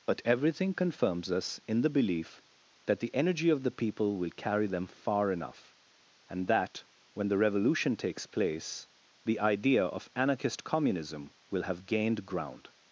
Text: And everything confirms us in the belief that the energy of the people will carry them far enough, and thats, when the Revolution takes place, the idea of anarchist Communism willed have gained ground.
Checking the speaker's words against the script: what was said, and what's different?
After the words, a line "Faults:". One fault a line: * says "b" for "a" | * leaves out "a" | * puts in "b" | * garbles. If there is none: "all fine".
But everything confirms us in the belief that the energy of the people will carry them far enough, and that, when the Revolution takes place, the idea of anarchist Communism will have gained ground.
Faults:
* says "But" for "And"
* says "that" for "thats"
* says "will" for "willed"